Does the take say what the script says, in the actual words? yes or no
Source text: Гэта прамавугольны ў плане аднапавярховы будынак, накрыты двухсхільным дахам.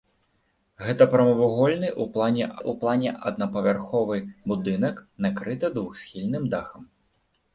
no